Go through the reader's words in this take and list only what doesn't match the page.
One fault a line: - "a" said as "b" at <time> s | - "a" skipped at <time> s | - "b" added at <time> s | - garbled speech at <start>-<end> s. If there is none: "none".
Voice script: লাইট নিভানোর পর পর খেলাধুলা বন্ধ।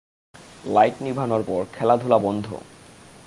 - "পর" skipped at 1.6 s